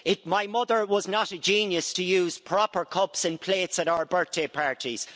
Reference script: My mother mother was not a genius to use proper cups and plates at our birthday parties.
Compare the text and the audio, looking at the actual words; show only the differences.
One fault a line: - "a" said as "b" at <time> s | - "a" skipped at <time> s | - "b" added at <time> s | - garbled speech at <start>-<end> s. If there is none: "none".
- "mother" skipped at 0.9 s